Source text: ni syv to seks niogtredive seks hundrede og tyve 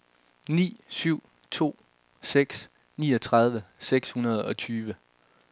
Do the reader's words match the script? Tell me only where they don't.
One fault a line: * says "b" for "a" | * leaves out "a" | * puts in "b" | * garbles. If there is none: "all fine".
all fine